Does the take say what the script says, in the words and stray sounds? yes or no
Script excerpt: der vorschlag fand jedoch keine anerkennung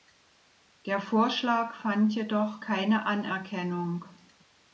yes